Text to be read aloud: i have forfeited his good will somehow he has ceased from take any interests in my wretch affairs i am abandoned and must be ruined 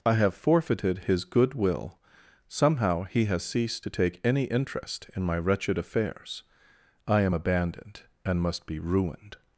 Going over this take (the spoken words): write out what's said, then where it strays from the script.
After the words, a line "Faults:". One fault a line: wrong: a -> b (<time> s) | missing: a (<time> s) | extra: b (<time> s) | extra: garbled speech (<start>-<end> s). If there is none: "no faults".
i have forfeited his good will somehow he has ceased to take any interest in my wretched affairs i am abandoned and must be ruined
Faults:
wrong: from -> to (3.8 s)
wrong: interests -> interest (4.4 s)
wrong: wretch -> wretched (5.4 s)